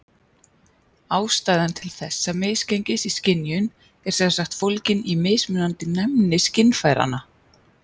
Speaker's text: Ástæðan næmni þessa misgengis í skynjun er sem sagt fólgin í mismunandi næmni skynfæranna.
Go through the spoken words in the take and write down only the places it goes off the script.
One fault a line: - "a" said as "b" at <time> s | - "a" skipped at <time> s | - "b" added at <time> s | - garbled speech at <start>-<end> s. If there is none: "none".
- "næmni" said as "til" at 1.8 s